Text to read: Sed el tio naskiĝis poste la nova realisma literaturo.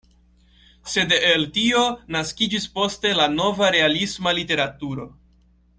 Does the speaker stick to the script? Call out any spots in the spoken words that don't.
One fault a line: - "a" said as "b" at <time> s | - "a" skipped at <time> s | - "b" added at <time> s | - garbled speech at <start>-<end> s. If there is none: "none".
none